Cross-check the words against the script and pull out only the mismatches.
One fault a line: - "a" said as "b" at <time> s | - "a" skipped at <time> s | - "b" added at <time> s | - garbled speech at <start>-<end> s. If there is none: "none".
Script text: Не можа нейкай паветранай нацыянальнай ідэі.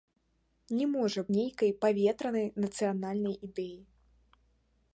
none